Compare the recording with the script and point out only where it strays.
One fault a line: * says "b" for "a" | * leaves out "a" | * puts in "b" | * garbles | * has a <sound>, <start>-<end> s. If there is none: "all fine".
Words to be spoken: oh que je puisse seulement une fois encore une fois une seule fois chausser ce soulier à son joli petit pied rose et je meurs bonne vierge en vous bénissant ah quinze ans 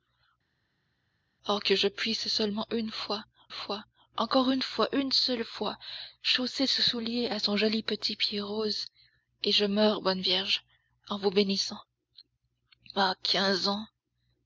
* puts in "fois"